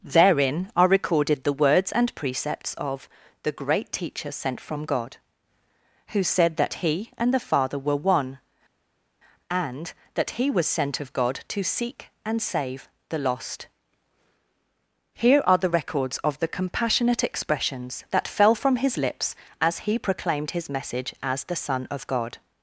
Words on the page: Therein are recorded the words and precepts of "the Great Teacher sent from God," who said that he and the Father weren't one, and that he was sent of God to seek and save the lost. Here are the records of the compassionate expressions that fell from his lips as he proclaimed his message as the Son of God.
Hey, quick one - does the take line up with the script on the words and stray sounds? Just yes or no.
no